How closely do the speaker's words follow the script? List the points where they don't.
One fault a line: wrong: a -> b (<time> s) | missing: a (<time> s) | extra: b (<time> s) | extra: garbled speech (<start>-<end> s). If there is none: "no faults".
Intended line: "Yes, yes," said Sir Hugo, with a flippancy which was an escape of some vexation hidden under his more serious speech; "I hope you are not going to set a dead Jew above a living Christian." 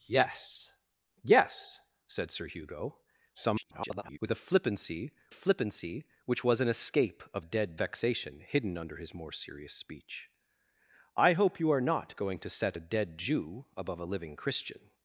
extra: garbled speech (3.3-4.2 s)
extra: flippancy (5.3 s)
wrong: some -> dead (7.4 s)